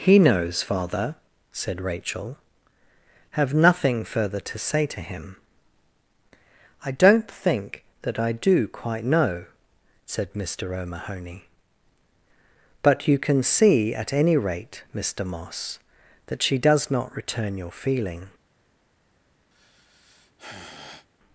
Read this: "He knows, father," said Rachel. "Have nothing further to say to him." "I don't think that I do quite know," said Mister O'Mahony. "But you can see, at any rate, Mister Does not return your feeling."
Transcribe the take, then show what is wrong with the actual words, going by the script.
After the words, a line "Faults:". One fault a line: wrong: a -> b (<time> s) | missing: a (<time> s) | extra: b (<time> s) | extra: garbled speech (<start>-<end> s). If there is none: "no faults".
"He knows, father," said Rachel. "Have nothing further to say to him." "I don't think that I do quite know," said Mister O'Mahony. "But you can see, at any rate, Mister Moss, that she does not return your feeling."
Faults:
extra: Moss that she (15.2 s)